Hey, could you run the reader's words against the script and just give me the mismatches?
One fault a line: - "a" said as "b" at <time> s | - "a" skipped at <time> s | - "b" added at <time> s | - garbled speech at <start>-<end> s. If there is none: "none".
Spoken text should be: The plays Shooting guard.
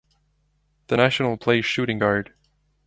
- "national" added at 1.0 s